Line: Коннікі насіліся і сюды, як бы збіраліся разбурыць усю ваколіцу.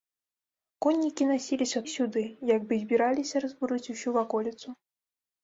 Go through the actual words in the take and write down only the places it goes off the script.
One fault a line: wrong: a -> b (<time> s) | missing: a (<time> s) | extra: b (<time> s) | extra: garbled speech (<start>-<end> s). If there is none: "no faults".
no faults